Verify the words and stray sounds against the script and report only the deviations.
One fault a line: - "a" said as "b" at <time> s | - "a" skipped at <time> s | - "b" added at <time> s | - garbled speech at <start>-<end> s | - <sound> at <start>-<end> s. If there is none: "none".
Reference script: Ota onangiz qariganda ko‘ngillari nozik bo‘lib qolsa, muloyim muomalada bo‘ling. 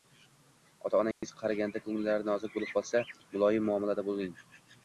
- dropout at 1.1-1.2 s